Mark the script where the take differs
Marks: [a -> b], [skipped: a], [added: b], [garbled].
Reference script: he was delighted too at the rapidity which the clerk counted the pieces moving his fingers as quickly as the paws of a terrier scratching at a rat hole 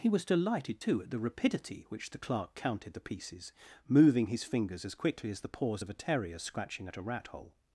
he was delighted too at the rapidity which the clerk counted the pieces moving his fingers as quickly as the paws of a terrier scratching at a rat hole